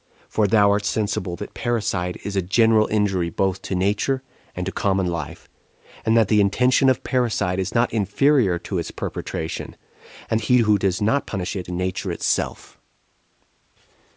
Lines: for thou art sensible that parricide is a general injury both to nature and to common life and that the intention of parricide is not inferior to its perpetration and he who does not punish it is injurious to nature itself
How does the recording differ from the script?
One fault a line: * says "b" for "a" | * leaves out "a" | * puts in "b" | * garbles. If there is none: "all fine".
* leaves out "is injurious to"